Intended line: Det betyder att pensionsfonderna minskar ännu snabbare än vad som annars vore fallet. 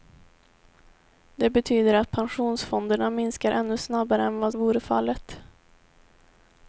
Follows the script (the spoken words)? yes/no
no